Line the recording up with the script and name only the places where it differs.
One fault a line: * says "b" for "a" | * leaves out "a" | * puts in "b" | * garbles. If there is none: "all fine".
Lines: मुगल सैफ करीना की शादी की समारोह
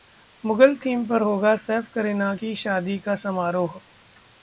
* puts in "थीम पर होगा"
* says "का" for "की"